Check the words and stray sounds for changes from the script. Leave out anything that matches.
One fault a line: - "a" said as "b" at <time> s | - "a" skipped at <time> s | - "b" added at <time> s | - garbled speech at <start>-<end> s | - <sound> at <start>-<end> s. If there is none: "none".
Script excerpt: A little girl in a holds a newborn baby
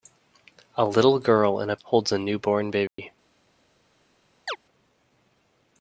- dropout at 2.9-3.0 s
- chirp at 4.5-4.6 s